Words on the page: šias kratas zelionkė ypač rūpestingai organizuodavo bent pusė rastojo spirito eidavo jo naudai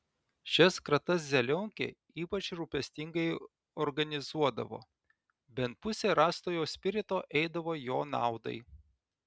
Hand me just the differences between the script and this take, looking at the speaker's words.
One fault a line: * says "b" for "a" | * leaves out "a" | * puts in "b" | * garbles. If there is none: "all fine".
all fine